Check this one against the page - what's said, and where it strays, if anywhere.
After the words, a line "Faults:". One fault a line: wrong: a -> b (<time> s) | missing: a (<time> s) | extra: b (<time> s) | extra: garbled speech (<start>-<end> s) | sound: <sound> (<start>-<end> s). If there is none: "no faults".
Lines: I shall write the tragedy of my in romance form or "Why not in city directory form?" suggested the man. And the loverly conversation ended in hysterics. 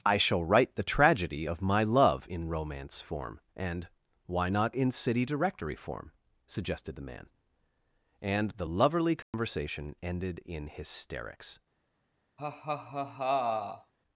I shall write the tragedy of my love in romance form and "Why not in city directory form?" suggested the man. And the loverly conversation ended in hysterics.
Faults:
extra: love (1.8 s)
wrong: or -> and (3.6 s)
sound: dropout (9.2-9.3 s)
sound: laugh (12.4-13.9 s)